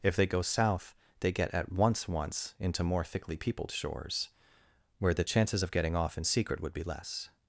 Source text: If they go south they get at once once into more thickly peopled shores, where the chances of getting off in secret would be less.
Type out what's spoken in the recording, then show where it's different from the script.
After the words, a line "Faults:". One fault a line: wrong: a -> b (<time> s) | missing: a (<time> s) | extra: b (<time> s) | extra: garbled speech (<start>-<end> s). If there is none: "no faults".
If they go south they get at once once into more thickly peopled shores, where the chances of getting off in secret would be less.
Faults:
no faults